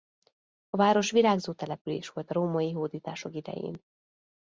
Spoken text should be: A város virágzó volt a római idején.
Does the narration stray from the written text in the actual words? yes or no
yes